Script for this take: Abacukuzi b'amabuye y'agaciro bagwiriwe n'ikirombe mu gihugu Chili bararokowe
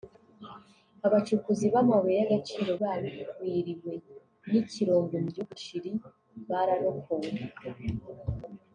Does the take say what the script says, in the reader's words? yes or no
yes